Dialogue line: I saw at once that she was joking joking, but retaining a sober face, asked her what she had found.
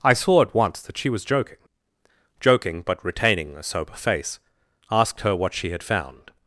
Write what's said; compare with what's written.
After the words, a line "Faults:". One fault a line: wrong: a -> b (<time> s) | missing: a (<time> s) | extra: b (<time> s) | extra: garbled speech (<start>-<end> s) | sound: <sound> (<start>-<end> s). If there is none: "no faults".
I saw at once that she was joking joking, but retaining a sober face, asked her what she had found.
Faults:
no faults